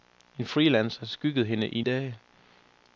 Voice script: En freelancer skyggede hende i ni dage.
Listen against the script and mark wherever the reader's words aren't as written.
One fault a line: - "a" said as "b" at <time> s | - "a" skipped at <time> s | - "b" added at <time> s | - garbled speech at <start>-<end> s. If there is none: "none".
- "ni" skipped at 1.8 s